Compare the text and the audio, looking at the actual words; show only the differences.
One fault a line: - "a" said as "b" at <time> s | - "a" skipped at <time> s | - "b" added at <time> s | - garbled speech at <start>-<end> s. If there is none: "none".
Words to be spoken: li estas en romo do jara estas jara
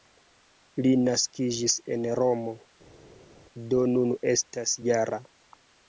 - "estas" said as "naskiĝis" at 1.0 s
- "jara" said as "nun" at 3.9 s